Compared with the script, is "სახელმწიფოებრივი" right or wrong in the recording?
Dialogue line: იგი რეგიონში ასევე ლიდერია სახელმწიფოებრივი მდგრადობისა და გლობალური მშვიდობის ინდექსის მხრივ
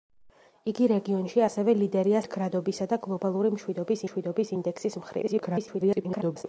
wrong